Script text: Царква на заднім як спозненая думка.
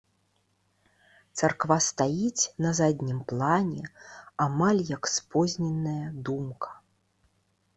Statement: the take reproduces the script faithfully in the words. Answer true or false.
false